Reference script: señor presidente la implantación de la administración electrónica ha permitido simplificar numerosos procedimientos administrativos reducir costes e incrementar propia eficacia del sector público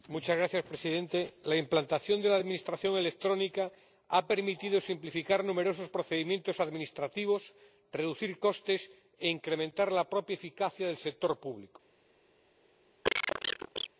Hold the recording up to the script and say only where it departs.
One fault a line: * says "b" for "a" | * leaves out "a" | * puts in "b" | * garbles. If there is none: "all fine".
* puts in "la"